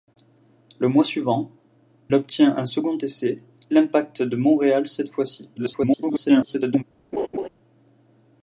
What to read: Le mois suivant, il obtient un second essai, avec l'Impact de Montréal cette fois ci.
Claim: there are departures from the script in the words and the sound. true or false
true